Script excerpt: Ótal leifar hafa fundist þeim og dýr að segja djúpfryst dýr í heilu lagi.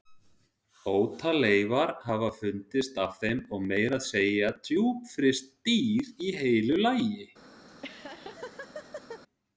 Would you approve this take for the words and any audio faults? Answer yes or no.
no